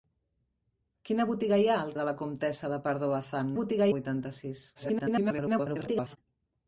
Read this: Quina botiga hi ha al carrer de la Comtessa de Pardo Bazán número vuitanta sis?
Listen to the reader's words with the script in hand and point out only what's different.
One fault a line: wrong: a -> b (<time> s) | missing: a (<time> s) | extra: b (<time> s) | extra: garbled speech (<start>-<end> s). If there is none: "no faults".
missing: carrer (1.9 s)
wrong: número -> botiga (3.6 s)
extra: garbled speech (4.7-6.2 s)